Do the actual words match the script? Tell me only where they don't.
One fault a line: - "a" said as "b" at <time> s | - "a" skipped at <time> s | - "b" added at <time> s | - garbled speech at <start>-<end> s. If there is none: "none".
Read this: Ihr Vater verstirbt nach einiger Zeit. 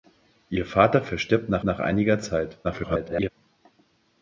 - "nach" added at 1.6 s
- garbled speech at 2.6-3.3 s